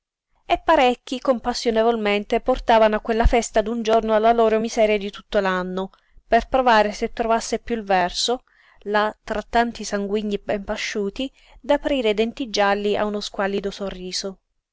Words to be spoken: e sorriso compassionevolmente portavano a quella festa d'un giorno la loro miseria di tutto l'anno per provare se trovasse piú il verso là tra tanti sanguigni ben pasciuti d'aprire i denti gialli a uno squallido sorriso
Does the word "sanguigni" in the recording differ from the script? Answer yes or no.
no